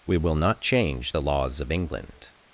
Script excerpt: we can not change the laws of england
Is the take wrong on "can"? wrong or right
wrong